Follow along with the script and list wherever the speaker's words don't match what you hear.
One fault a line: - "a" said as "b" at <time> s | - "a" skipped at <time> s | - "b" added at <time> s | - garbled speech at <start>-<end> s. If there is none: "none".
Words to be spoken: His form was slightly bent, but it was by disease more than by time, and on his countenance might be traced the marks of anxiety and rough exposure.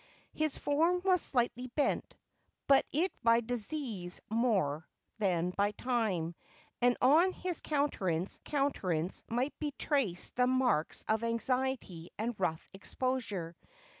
- "was" skipped at 3.1 s
- "countenance" added at 8.4 s